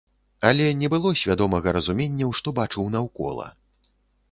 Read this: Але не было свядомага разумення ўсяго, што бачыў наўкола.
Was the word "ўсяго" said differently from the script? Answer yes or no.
yes